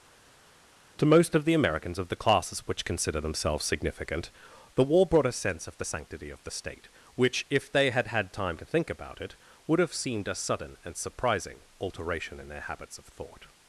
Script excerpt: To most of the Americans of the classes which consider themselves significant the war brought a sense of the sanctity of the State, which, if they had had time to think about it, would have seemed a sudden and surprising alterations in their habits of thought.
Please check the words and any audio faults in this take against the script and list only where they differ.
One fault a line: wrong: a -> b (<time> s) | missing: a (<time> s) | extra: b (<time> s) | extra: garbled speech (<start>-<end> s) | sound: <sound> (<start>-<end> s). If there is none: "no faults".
wrong: alterations -> alteration (11.8 s)